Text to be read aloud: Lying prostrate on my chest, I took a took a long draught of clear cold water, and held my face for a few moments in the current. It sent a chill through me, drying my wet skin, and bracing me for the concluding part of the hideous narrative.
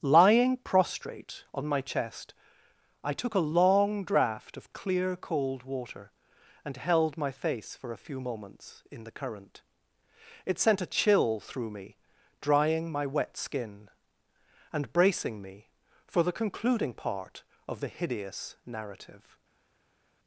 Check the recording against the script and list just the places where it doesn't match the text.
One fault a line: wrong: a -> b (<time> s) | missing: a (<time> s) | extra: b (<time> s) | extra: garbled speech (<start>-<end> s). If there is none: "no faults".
missing: took a (3.5 s)